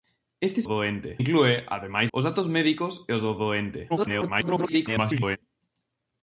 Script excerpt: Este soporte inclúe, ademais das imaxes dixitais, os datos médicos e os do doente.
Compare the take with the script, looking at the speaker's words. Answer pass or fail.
fail